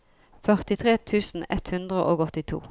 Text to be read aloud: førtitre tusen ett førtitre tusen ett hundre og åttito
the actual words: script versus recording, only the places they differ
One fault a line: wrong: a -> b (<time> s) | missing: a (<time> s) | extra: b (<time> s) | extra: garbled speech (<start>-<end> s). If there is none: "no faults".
missing: førtitre tusen ett (1.7 s)